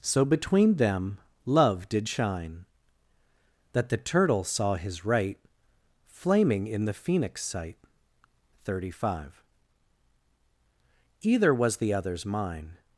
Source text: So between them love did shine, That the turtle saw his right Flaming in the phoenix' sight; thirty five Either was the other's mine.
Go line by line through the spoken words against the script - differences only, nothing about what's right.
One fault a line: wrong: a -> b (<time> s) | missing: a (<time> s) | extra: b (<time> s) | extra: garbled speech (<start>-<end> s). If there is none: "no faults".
no faults